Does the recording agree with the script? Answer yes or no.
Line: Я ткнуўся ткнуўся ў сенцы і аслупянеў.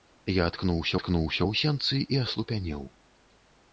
yes